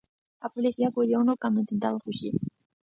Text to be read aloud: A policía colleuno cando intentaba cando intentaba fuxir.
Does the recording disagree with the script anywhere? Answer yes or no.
yes